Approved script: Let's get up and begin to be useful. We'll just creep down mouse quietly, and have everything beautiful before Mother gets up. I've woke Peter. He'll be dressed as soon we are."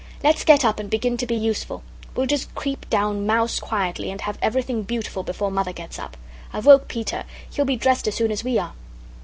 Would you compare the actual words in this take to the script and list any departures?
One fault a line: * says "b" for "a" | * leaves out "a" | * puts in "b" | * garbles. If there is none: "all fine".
* puts in "as"